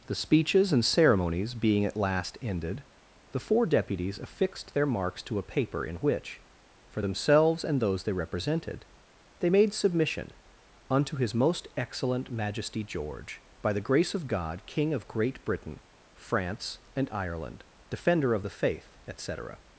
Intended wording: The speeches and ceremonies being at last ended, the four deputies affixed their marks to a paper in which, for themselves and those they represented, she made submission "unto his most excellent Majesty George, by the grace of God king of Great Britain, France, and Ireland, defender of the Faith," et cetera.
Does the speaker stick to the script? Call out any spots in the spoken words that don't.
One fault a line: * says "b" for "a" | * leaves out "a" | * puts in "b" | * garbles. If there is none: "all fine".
* says "they" for "she"